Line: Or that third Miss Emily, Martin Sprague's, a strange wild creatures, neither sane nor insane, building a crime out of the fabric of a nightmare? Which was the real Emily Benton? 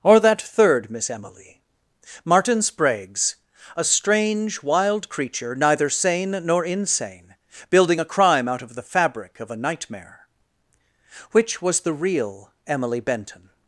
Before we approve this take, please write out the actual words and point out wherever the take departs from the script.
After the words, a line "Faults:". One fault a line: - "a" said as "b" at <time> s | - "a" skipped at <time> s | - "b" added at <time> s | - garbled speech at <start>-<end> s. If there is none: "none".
Or that third Miss Emily, Martin Sprague's, a strange wild creature, neither sane nor insane, building a crime out of the fabric of a nightmare? Which was the real Emily Benton?
Faults:
- "creatures" said as "creature" at 5.1 s